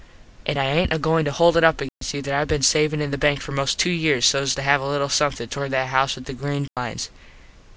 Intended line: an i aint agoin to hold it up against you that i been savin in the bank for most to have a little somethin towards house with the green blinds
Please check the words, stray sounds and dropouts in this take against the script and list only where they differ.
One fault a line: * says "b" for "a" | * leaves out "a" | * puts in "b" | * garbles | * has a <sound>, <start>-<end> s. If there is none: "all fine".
* has a dropout, 1.9-2.0 s
* puts in "two years sos"
* puts in "that"
* has a dropout, 6.7-6.8 s